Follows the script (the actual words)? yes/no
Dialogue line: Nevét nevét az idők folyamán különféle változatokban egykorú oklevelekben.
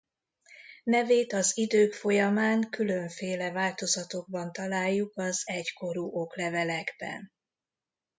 no